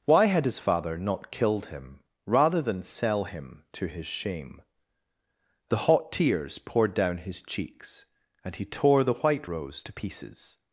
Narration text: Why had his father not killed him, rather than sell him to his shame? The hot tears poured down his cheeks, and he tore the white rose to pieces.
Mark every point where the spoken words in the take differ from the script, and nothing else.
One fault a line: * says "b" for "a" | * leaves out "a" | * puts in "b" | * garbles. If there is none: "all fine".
all fine